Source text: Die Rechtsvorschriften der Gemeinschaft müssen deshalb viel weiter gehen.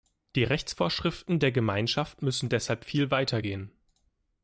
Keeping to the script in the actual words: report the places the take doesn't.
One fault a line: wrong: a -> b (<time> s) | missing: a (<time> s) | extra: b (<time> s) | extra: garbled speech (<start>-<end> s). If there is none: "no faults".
no faults